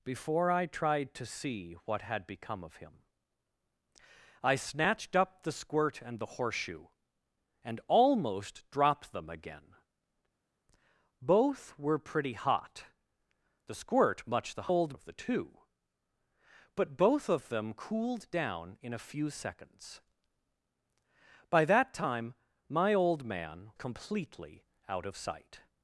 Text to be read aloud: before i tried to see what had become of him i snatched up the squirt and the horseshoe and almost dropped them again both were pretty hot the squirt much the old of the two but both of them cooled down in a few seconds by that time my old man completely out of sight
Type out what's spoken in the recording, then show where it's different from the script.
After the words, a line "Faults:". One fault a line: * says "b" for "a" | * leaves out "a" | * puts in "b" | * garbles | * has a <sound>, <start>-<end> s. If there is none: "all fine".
before i tried to see what had become of him i snatched up the squirt and the horseshoe and almost dropped them again both were pretty hot the squirt much the old of the two but both of them cooled down in a few seconds by that time my old man completely out of sight
Faults:
all fine